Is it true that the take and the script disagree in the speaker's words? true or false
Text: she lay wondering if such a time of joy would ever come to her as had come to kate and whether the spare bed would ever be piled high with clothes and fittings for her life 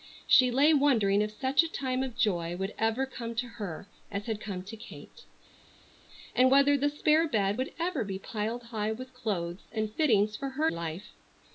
false